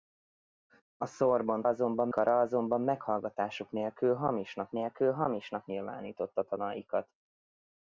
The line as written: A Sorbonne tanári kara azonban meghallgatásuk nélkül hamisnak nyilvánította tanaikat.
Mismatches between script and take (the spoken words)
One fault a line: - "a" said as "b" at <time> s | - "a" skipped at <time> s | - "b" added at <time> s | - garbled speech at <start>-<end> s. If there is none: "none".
- "tanári" said as "azonban" at 1.7 s
- "nélkül hamisnak" added at 4.7 s